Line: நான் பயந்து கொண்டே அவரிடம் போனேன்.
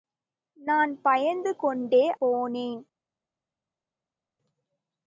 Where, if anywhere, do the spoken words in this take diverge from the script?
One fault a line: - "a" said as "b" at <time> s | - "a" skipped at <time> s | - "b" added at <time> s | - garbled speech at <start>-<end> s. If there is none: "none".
- "அவரிடம்" skipped at 2.1 s